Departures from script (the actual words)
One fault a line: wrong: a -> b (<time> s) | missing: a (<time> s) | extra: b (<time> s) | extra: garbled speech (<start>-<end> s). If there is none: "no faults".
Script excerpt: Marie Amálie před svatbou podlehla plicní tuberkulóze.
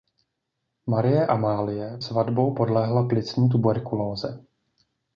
missing: před (2.0 s)